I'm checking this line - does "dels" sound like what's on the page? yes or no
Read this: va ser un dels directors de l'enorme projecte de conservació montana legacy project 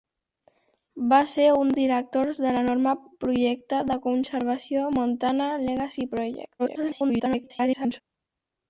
no